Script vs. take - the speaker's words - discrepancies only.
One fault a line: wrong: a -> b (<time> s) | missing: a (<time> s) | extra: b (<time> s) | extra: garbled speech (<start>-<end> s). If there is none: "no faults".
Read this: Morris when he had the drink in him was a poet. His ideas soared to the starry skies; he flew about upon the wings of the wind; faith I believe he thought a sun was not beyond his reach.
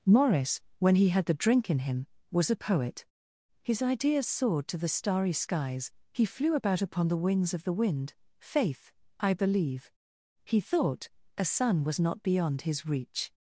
no faults